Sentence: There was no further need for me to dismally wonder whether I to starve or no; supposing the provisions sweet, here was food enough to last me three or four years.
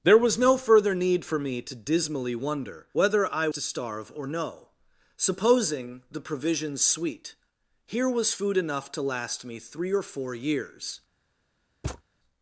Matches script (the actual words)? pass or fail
pass